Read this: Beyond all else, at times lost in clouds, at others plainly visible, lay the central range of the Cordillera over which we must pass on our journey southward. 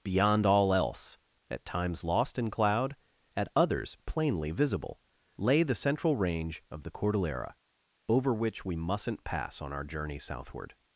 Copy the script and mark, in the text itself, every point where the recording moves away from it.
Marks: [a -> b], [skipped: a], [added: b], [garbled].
Beyond all else, at times lost in [clouds, -> cloud] at others plainly visible, lay the central range of the Cordillera over which we [must -> mustn't] pass on our journey southward.